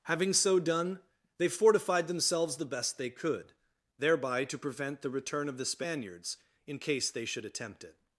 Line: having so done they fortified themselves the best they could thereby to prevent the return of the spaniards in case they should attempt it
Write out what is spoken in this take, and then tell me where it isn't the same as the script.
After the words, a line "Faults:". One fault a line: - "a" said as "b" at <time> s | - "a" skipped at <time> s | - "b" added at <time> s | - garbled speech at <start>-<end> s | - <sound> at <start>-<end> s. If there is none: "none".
having so done they fortified themselves the best they could thereby to prevent the return of the spaniards in case they should attempt it
Faults:
none